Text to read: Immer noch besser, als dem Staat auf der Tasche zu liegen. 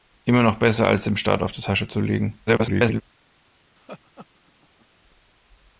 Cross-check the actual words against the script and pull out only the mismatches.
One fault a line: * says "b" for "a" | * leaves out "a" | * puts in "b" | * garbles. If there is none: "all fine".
* garbles